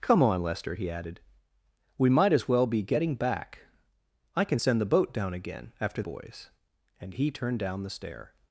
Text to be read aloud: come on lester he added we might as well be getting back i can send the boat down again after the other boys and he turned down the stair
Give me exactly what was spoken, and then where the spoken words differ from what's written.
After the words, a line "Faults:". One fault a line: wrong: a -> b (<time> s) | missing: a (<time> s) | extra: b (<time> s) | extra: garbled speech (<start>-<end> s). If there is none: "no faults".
come on lester he added we might as well be getting back i can send the boat down again after boys and he turned down the stair
Faults:
missing: the other (6.0 s)